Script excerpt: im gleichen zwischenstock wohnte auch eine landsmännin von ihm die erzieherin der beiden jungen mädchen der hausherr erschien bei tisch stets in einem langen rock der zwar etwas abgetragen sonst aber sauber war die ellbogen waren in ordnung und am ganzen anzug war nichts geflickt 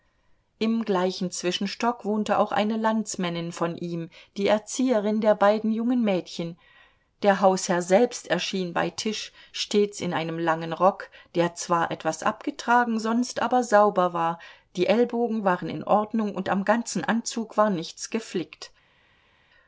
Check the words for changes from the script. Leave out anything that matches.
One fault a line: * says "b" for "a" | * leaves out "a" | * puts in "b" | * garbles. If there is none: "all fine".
* puts in "selbst"